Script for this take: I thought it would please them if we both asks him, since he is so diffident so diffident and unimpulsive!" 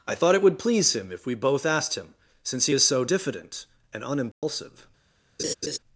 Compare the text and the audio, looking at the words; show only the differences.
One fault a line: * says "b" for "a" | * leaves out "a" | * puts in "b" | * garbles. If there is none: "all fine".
* says "him" for "them"
* says "asked" for "asks"
* leaves out "so diffident"